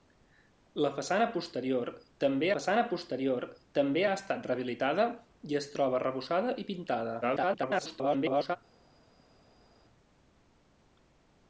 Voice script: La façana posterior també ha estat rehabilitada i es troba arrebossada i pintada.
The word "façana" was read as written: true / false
true